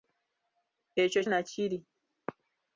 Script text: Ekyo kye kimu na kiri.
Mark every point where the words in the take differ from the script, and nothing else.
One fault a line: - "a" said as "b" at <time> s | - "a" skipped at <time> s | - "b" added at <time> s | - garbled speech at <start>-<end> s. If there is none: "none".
- "kye kimu" skipped at 1.2 s